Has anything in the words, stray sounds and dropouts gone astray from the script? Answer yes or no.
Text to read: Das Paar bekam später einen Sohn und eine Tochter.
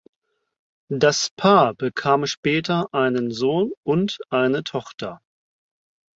no